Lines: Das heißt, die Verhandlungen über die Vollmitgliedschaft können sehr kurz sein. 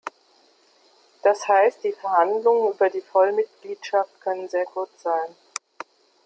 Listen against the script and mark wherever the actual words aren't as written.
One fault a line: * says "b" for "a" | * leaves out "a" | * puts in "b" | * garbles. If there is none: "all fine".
all fine